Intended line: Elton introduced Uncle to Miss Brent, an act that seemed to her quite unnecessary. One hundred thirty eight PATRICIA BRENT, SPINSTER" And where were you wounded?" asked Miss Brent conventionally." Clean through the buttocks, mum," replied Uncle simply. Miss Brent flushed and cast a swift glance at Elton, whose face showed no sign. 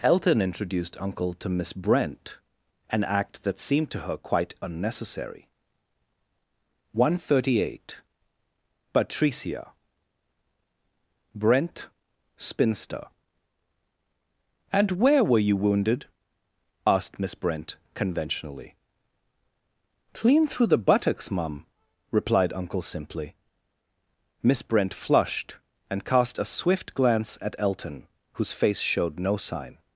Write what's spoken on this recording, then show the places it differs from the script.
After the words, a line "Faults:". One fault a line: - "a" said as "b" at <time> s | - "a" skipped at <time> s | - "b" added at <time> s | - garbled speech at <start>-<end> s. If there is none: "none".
Elton introduced Uncle to Miss Brent, an act that seemed to her quite unnecessary. One hundred thirty eight PATRICIA BRENT, SPINSTER" And where were you wounded?" asked Miss Brent conventionally." Clean through the buttocks, mum," replied Uncle simply. Miss Brent flushed and cast a swift glance at Elton, whose face showed no sign.
Faults:
none